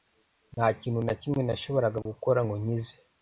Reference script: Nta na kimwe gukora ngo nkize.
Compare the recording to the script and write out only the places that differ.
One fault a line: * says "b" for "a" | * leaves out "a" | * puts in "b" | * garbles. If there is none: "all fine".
* puts in "kintu"
* puts in "nashoboraga"